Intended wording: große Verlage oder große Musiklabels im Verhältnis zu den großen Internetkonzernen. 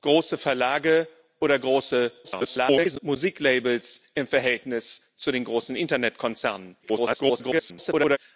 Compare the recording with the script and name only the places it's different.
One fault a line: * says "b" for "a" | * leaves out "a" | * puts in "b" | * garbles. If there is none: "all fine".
* garbles
* garbles